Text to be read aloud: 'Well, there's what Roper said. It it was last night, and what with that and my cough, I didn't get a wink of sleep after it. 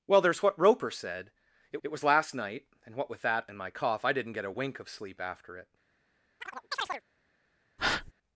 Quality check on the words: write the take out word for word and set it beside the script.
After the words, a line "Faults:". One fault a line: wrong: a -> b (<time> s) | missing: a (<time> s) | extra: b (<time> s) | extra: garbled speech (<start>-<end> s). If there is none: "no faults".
'Well, there's what Roper said. It it was last night, and what with that and my cough, I didn't get a wink of sleep after it.
Faults:
no faults